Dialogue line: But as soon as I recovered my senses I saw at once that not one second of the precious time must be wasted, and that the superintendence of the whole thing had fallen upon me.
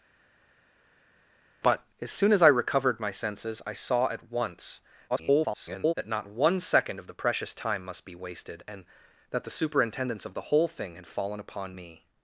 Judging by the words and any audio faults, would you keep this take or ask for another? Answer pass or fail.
fail